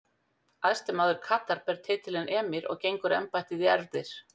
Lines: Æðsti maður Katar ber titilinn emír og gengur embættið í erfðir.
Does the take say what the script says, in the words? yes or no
yes